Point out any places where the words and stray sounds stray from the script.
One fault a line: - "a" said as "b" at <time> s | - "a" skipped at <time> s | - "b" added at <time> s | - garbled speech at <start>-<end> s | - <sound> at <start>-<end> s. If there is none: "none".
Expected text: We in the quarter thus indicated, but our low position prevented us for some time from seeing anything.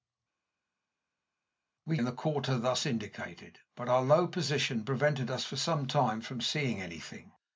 none